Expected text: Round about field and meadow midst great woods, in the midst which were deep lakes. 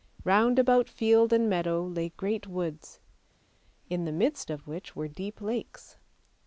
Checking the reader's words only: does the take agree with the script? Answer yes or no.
no